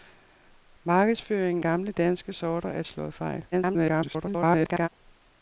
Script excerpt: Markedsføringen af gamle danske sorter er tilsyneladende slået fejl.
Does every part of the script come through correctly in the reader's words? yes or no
no